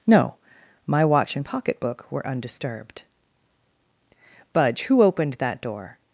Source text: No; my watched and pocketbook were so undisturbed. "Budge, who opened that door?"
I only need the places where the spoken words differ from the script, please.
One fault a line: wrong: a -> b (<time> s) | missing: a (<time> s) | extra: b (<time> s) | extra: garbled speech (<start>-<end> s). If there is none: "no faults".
wrong: watched -> watch (1.1 s)
missing: so (2.3 s)